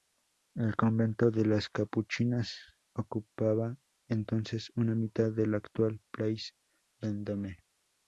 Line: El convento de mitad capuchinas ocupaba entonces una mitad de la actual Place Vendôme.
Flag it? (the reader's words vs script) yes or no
yes